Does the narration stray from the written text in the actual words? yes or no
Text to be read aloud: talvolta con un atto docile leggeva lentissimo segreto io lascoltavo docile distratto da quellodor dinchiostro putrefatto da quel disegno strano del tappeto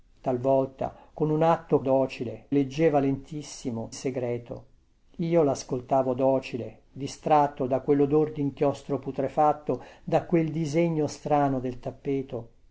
no